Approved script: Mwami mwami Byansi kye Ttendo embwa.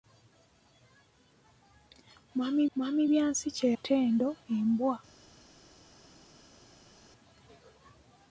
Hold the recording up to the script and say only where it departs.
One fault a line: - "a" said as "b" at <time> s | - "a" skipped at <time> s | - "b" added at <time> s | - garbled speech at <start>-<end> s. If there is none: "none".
none